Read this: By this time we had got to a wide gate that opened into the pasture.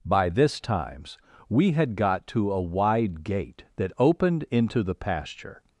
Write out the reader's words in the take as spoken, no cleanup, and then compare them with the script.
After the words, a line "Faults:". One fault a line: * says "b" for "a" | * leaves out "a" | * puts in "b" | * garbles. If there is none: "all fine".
By this times we had got to a wide gate that opened into the pasture.
Faults:
* says "times" for "time"